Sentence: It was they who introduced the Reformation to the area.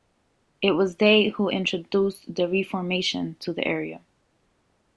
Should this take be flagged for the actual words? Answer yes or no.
no